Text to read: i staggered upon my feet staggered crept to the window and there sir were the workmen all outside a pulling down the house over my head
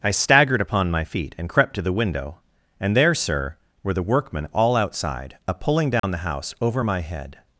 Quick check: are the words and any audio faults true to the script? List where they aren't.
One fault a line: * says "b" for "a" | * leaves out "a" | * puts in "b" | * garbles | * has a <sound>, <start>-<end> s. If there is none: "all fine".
* says "and" for "staggered"
* has a dropout, 6.0-6.0 s